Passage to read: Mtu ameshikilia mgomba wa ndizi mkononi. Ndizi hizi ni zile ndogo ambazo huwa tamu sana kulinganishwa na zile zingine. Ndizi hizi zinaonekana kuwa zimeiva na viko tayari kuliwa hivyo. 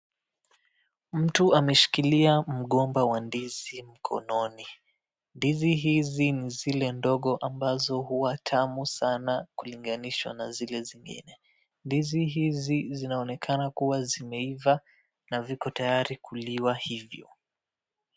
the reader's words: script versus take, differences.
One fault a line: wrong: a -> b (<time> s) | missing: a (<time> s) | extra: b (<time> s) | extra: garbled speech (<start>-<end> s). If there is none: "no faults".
no faults